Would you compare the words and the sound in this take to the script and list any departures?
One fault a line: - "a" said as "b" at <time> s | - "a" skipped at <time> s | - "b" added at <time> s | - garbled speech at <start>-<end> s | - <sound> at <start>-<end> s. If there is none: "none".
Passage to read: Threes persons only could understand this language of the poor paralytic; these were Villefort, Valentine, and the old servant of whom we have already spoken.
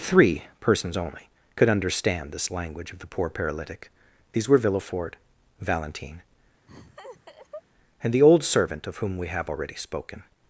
- "Threes" said as "Three" at 0.0 s
- laugh at 6.7-7.6 s